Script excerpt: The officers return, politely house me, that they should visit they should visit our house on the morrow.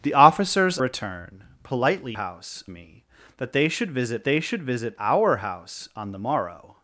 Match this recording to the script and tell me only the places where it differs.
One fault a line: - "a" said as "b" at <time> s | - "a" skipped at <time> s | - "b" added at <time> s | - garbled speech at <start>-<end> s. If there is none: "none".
none